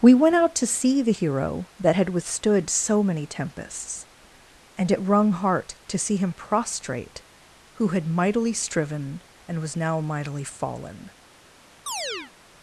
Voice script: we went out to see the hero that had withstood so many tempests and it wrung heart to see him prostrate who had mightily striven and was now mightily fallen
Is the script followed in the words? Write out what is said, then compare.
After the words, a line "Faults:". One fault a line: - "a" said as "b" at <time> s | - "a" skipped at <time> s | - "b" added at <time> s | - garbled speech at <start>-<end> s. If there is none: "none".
we went out to see the hero that had withstood so many tempests and it wrung heart to see him prostrate who had mightily striven and was now mightily fallen
Faults:
none